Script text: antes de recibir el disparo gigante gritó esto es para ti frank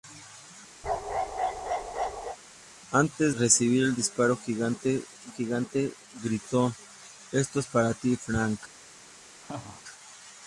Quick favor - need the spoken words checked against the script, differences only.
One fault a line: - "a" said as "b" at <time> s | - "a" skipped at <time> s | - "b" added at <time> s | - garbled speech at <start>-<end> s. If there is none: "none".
- "de" skipped at 3.3 s
- "gigante" added at 5.3 s